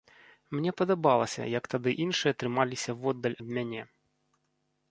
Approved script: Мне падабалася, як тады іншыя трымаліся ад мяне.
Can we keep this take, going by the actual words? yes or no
no